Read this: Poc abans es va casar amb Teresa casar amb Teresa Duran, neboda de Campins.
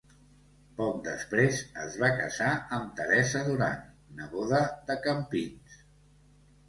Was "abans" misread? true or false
true